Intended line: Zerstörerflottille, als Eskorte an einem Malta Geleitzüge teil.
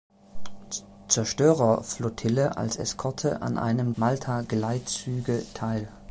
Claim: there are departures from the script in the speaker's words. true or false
false